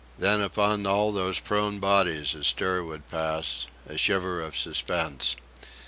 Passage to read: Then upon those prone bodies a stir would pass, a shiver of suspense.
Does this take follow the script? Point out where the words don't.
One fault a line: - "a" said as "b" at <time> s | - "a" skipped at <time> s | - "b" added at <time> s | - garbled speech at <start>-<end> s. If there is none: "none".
- "all" added at 0.9 s